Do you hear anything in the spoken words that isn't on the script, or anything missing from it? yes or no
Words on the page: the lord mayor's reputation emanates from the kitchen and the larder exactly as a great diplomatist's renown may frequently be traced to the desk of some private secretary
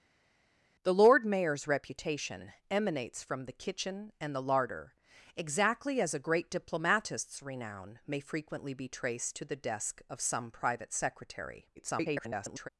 yes